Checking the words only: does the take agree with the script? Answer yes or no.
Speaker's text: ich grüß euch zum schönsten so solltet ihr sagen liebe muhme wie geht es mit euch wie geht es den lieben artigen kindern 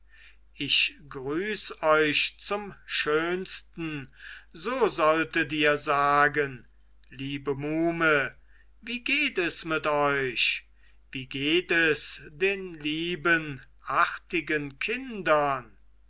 yes